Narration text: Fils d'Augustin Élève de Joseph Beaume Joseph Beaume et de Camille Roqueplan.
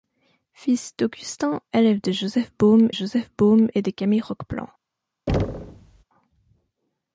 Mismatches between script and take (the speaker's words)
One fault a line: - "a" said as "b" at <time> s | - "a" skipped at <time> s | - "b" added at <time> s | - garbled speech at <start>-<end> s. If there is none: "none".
none